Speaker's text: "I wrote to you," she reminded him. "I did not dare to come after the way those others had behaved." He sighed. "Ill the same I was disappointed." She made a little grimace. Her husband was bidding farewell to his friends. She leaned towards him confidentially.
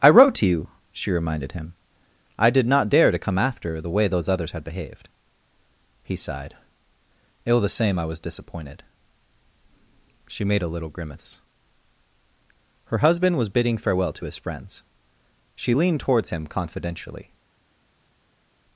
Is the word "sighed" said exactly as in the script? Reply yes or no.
yes